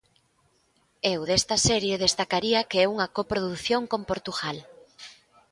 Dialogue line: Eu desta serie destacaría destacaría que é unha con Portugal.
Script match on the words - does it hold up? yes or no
no